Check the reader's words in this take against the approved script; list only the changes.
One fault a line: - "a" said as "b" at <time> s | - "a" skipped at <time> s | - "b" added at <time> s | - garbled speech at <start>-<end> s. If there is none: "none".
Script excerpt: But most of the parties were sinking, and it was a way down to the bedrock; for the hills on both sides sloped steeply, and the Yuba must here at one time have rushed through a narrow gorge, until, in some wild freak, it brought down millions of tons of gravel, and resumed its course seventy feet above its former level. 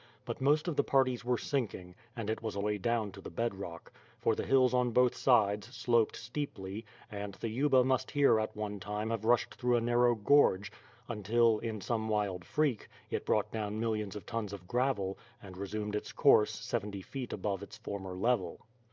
none